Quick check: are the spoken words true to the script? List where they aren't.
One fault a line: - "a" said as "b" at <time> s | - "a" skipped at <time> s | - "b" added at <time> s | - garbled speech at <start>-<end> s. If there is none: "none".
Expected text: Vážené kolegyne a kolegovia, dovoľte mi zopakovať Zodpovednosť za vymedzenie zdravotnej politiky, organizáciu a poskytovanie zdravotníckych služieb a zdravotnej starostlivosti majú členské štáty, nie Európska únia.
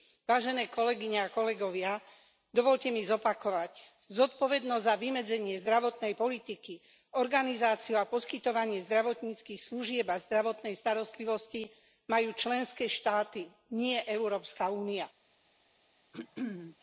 none